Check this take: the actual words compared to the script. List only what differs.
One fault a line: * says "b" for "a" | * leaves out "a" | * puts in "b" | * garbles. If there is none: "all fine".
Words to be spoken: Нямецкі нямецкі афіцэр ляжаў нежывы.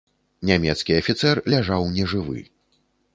* leaves out "нямецкі"